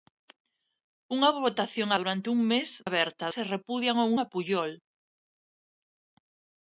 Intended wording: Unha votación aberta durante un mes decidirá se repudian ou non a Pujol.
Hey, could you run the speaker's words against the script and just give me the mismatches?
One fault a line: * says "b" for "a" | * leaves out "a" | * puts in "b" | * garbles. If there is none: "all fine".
* leaves out "aberta"
* says "aberta" for "decidirá"
* leaves out "non"